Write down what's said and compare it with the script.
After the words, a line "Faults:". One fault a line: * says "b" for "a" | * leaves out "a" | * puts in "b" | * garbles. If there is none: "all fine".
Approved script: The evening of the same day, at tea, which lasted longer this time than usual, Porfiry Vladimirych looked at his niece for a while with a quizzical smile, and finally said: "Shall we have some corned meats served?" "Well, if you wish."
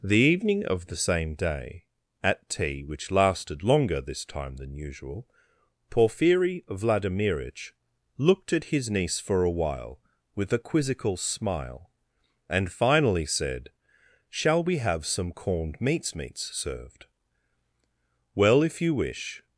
The evening of the same day, at tea, which lasted longer this time than usual, Porfiry Vladimirych looked at his niece for a while with a quizzical smile, and finally said: "Shall we have some corned meats meats served?" "Well, if you wish."
Faults:
* puts in "meats"